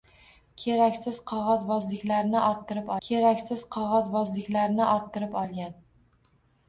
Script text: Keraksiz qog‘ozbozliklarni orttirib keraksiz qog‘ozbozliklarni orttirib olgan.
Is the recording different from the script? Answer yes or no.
no